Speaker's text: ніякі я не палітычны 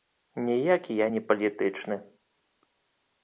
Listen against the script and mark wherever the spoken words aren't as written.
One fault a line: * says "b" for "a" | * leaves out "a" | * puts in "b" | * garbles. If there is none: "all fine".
all fine